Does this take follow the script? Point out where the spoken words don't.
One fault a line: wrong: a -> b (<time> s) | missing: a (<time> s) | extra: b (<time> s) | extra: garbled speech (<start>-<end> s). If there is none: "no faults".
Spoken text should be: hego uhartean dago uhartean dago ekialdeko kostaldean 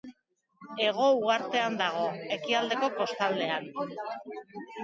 missing: uhartean dago (2.0 s)